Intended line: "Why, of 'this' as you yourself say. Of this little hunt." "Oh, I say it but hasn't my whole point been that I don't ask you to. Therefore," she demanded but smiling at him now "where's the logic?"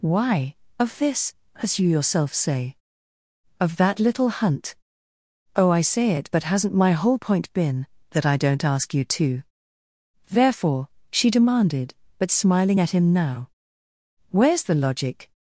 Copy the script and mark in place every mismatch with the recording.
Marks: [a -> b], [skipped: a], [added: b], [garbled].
"Why, of 'this' as you yourself say. Of [this -> that] little hunt." "Oh, I say it but hasn't my whole point been that I don't ask you to. Therefore," she demanded but smiling at him now "where's the logic?"